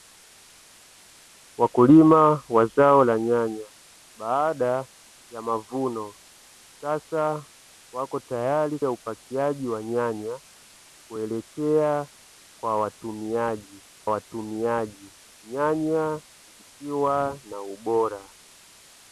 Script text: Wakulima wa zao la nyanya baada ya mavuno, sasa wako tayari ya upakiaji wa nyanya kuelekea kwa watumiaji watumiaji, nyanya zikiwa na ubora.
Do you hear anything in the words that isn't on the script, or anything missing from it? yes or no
no